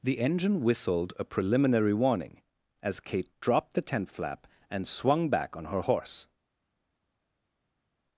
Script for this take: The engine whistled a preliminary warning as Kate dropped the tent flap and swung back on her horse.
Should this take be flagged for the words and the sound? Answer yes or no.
no